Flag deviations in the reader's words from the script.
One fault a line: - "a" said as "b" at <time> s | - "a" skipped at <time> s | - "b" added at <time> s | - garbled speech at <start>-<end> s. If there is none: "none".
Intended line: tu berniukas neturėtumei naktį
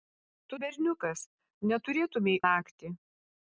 none